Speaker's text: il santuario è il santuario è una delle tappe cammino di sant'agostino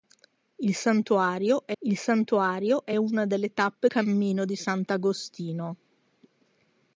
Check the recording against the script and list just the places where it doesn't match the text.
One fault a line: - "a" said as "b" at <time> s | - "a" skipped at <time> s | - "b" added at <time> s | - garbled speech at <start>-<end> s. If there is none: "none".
none